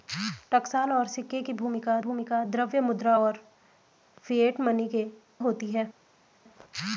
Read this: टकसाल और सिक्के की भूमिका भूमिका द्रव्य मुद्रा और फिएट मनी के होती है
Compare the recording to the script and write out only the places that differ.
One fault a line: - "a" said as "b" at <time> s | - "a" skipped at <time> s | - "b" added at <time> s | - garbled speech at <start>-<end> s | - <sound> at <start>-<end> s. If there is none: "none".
none